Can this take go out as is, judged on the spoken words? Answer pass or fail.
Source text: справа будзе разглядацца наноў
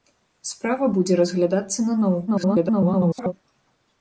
fail